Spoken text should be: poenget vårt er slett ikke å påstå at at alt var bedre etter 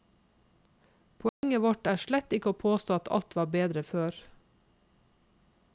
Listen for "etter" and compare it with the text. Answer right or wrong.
wrong